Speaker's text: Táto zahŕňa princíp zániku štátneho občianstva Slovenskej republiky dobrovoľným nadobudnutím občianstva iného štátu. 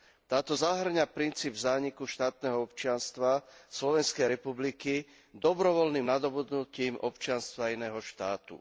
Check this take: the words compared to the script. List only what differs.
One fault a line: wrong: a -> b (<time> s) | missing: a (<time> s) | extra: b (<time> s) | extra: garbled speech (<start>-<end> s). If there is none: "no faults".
no faults